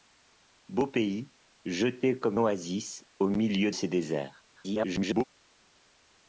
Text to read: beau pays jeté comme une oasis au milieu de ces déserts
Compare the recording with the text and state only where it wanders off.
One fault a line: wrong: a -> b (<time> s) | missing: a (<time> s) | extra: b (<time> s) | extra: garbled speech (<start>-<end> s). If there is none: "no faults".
missing: une (2.4 s)
missing: de (3.7 s)
extra: garbled speech (4.5-5.2 s)